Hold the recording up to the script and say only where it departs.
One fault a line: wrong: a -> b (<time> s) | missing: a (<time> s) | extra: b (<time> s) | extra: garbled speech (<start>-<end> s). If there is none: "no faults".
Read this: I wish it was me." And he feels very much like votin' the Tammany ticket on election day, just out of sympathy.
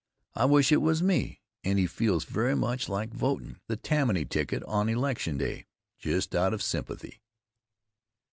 no faults